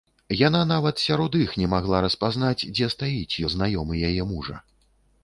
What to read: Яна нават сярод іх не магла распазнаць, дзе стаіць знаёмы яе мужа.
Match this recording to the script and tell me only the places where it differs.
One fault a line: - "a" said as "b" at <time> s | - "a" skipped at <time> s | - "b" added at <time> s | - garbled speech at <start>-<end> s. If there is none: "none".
none